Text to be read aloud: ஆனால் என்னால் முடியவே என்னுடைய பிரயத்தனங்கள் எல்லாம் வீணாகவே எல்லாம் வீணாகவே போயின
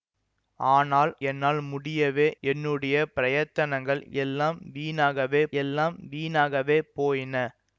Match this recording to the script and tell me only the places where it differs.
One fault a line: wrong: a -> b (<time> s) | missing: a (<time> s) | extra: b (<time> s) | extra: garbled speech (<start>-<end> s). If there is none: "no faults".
no faults